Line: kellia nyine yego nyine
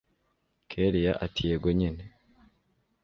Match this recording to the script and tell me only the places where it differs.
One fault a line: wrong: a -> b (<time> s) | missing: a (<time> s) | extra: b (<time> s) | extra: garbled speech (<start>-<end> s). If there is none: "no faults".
wrong: nyine -> ati (1.3 s)